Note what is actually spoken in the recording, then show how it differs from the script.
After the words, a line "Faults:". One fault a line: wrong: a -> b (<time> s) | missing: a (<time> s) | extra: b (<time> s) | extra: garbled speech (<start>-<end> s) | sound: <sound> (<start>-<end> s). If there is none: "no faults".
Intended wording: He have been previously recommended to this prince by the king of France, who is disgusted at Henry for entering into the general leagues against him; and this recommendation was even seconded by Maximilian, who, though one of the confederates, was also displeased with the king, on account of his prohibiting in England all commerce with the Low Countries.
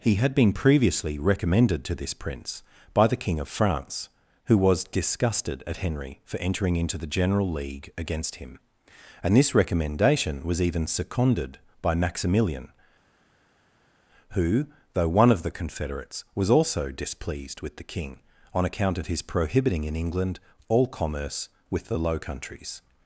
He had been previously recommended to this prince by the king of France, who was disgusted at Henry for entering into the general league against him; and this recommendation was even seconded by Maximilian, who, though one of the confederates, was also displeased with the king, on account of his prohibiting in England all commerce with the Low Countries.
Faults:
wrong: have -> had (0.1 s)
wrong: is -> was (4.6 s)
wrong: leagues -> league (7.5 s)